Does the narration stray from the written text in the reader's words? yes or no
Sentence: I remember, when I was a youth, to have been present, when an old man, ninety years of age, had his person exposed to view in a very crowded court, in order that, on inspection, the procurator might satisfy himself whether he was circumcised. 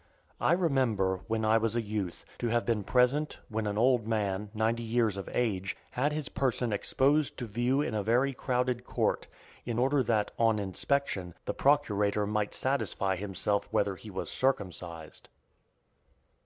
no